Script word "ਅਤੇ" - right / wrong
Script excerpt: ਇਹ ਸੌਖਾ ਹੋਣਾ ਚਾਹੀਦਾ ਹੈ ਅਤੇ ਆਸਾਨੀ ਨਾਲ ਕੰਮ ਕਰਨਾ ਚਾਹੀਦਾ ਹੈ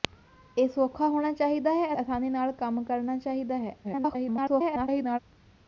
wrong